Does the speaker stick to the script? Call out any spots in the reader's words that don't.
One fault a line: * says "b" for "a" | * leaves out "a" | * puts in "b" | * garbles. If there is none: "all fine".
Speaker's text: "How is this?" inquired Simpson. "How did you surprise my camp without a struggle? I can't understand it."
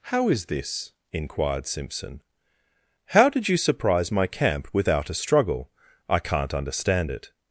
all fine